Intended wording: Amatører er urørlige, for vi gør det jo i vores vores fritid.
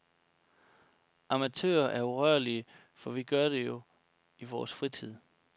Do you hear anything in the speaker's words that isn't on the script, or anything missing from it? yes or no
yes